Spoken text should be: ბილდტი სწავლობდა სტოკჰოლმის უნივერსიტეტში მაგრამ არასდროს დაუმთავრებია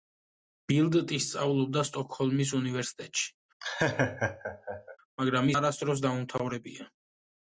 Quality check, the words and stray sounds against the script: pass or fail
fail